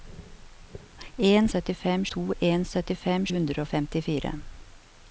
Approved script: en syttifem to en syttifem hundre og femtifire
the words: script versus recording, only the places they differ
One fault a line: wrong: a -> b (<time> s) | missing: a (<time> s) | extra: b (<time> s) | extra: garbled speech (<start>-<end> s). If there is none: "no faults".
no faults